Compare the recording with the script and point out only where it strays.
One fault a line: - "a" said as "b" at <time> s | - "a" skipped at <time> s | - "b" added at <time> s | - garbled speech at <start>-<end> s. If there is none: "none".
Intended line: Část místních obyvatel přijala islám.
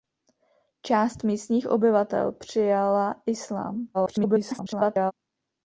- garbled speech at 3.9-5.1 s